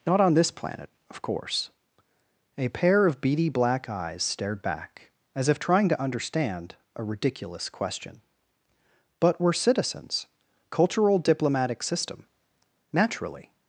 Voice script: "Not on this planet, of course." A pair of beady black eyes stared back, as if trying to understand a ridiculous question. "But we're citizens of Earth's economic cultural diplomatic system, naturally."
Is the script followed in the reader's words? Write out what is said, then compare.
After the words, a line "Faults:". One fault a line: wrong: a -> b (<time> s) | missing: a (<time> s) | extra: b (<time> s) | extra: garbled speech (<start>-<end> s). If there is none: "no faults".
"Not on this planet, of course." A pair of beady black eyes stared back, as if trying to understand a ridiculous question. "But we're citizens cultural diplomatic system, naturally."
Faults:
missing: of Earth's economic (10.3 s)